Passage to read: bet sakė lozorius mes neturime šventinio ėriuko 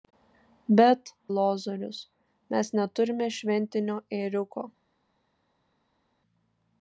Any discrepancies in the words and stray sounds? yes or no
yes